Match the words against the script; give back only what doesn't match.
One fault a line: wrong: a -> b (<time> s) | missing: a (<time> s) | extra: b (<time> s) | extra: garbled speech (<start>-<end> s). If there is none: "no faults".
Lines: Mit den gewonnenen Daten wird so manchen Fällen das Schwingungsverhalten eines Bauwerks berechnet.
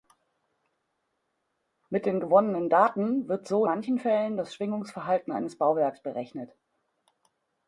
no faults